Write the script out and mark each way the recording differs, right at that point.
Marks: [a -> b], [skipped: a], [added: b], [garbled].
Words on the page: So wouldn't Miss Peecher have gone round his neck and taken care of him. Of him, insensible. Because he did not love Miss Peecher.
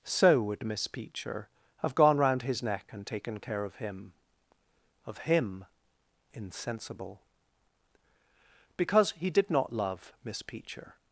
So [wouldn't -> would] Miss Peecher have gone round his neck and taken care of him. Of him, insensible. Because he did not love Miss Peecher.